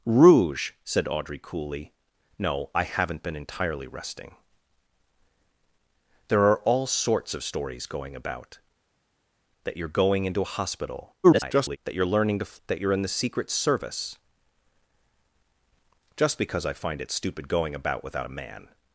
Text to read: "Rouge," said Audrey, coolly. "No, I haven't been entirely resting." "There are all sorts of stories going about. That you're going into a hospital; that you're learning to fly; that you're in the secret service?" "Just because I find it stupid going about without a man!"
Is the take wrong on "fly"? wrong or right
wrong